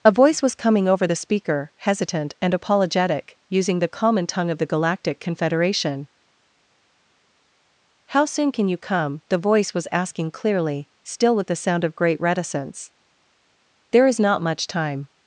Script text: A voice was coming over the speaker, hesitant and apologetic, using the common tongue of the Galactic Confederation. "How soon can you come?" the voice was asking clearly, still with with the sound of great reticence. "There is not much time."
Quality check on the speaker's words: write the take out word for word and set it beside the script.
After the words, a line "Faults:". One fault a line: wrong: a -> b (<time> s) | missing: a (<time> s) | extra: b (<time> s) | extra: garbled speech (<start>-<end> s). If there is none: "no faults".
A voice was coming over the speaker, hesitant and apologetic, using the common tongue of the Galactic Confederation. "How soon can you come?" the voice was asking clearly, still with the sound of great reticence. "There is not much time."
Faults:
missing: with (11.5 s)